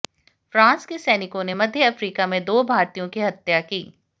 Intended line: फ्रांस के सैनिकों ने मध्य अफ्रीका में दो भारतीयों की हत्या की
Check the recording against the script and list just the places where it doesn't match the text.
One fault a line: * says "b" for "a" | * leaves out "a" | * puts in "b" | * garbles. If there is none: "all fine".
all fine